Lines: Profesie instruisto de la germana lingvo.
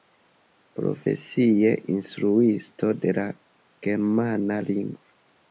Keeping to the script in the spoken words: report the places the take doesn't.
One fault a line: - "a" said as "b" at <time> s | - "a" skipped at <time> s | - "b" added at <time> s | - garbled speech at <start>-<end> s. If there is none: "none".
none